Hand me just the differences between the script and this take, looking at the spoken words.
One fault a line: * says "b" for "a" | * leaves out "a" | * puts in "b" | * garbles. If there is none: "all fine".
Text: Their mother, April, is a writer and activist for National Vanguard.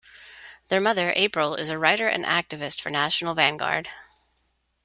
all fine